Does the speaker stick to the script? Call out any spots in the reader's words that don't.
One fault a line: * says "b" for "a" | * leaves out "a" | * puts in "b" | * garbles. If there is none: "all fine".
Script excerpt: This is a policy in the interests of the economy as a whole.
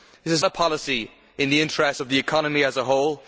all fine